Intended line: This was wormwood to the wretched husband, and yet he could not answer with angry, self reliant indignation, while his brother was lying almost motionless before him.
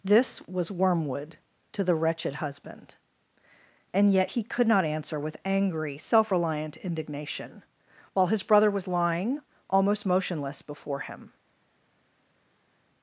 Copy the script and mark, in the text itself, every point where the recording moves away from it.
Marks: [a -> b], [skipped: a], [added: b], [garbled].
This was wormwood to the wretched husband, and yet he could not answer with angry, self reliant indignation, while his brother was lying almost motionless before him.